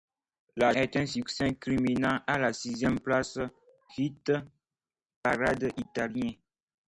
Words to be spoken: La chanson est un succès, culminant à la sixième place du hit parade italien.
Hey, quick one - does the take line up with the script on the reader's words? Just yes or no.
no